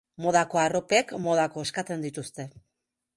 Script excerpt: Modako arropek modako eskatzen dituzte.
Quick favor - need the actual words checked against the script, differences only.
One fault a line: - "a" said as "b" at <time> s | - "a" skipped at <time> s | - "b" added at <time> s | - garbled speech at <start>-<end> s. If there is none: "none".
none